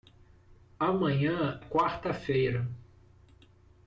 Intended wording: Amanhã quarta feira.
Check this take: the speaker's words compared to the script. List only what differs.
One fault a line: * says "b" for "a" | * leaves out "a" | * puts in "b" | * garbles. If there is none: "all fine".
all fine